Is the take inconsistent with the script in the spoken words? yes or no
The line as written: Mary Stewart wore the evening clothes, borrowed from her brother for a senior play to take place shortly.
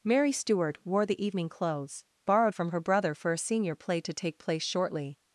no